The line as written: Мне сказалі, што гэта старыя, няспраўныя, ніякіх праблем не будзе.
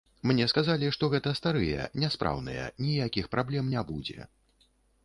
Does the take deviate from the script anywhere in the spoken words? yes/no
no